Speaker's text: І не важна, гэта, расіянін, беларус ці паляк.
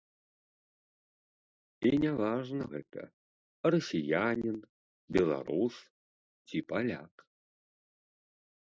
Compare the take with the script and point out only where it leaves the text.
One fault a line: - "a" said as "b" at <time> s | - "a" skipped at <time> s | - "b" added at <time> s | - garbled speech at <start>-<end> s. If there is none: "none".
none